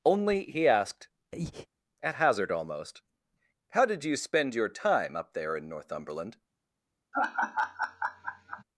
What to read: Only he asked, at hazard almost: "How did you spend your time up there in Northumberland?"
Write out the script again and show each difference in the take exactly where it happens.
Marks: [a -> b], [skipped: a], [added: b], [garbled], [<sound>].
Only he asked, [breath] at hazard almost: "How did you spend your time up there in Northumberland?" [laugh]